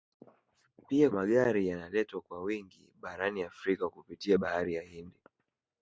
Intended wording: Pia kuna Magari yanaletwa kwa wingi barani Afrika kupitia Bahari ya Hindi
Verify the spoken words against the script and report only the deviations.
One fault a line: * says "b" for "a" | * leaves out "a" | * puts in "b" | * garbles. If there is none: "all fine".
* leaves out "kuna"